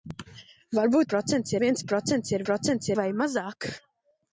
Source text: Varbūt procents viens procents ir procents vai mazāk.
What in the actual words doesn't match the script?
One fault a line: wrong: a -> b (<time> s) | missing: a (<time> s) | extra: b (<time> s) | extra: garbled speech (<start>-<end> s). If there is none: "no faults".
no faults